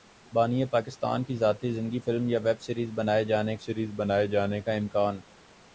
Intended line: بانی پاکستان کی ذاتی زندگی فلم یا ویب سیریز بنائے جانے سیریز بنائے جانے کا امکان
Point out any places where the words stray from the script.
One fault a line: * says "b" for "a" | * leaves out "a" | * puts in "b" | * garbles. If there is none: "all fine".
all fine